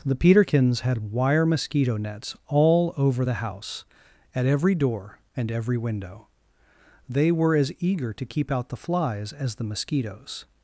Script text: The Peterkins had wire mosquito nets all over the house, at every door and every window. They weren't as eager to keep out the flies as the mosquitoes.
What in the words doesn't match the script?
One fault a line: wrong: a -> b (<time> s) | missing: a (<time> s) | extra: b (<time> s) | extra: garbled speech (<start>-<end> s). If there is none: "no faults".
wrong: weren't -> were (7.3 s)